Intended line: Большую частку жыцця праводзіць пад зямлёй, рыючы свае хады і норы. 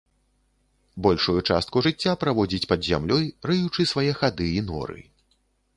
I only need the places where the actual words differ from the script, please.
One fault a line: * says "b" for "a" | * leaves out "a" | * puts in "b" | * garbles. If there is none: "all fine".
all fine